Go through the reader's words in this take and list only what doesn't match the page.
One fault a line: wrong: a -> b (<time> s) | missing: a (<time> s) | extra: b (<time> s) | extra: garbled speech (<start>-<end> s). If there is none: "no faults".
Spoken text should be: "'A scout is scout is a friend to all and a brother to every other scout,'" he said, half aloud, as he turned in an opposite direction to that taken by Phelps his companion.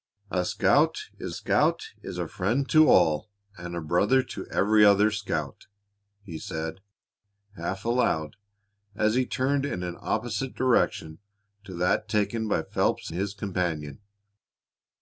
no faults